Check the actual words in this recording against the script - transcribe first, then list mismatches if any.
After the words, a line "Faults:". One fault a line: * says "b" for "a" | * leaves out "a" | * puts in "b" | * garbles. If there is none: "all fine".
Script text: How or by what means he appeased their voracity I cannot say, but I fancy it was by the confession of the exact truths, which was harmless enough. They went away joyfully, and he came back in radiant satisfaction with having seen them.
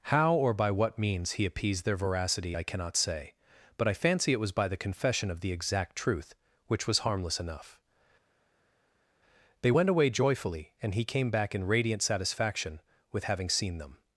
How or by what means he appeased their voracity I cannot say, but I fancy it was by the confession of the exact truth, which was harmless enough. They went away joyfully, and he came back in radiant satisfaction with having seen them.
Faults:
* says "truth" for "truths"